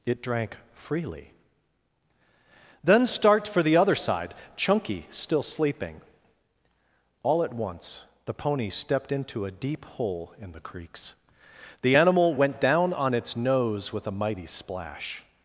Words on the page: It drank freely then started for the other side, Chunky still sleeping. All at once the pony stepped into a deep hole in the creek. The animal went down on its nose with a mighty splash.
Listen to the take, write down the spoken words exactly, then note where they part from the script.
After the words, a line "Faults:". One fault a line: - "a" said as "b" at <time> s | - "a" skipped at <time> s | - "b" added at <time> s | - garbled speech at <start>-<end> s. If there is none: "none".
It drank freely then start for the other side, Chunky still sleeping. All at once the pony stepped into a deep hole in the creeks. The animal went down on its nose with a mighty splash.
Faults:
- "started" said as "start" at 3.1 s
- "creek" said as "creeks" at 10.6 s